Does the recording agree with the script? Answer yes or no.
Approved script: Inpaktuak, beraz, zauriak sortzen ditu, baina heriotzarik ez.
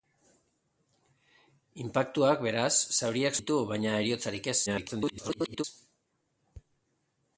no